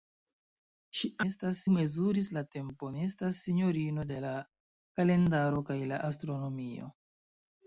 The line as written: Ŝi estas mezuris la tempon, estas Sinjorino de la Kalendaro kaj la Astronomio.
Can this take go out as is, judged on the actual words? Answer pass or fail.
pass